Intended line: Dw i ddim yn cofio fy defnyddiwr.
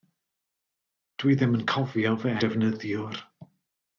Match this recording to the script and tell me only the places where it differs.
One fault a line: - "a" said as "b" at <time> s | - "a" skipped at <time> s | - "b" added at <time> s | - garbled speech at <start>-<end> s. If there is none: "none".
none